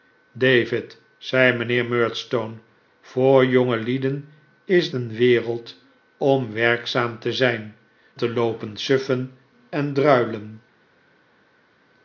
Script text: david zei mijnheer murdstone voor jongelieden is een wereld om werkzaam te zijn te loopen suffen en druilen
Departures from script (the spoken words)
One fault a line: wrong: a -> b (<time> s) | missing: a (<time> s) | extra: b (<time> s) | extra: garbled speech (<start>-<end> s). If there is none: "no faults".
no faults